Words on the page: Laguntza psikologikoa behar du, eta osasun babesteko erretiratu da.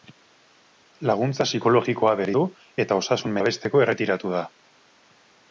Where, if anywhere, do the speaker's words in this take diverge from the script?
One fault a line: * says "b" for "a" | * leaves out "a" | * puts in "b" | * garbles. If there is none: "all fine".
all fine